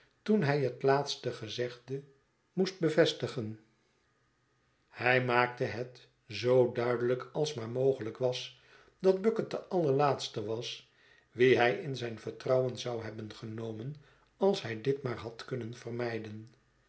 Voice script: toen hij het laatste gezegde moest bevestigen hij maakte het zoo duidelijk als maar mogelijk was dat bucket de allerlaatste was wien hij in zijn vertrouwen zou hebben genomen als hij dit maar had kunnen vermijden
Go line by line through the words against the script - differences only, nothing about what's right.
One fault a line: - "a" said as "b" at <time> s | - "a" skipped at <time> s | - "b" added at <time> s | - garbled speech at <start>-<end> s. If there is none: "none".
none